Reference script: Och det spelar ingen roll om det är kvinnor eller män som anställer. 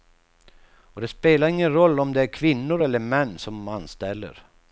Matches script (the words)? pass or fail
pass